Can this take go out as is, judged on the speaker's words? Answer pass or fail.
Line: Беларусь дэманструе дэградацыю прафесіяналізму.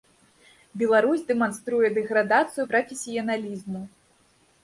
pass